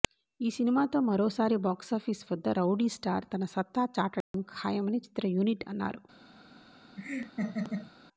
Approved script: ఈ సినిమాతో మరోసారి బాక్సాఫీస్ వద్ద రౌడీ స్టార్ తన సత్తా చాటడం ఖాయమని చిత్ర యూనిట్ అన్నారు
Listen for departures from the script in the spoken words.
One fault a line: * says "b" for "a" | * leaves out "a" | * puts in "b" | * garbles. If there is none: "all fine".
all fine